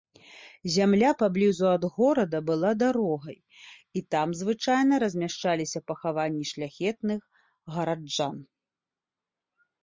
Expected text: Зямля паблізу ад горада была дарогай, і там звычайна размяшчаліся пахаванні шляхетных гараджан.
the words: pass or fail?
pass